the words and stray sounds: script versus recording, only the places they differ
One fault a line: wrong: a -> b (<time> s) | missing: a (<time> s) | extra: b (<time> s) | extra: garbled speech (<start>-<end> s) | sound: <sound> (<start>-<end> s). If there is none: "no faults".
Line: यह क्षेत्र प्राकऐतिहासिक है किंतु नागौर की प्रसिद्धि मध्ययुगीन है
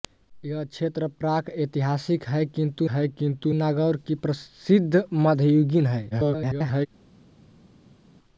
extra: है किंतु (2.9 s)
extra: garbled speech (6.1-6.9 s)